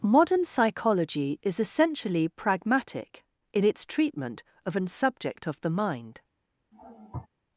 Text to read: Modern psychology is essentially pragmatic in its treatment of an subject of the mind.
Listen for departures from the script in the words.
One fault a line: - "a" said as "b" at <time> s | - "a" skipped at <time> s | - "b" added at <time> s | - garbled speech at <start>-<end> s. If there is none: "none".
none